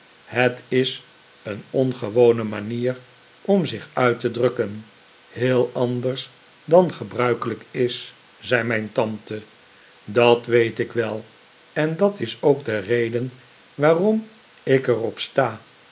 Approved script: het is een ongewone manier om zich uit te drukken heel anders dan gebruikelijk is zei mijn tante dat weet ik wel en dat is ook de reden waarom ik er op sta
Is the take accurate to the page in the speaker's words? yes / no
yes